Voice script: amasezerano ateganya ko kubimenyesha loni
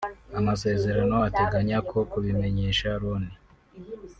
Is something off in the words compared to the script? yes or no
no